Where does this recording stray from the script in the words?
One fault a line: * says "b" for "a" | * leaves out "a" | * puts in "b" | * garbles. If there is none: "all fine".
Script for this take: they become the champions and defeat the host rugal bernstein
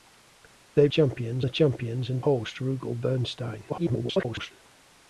* says "champions" for "become"
* leaves out "defeat the"
* garbles